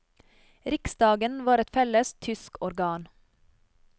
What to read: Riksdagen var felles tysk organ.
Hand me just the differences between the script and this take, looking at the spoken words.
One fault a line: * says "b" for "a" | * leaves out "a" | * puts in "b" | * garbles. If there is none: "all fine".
* puts in "et"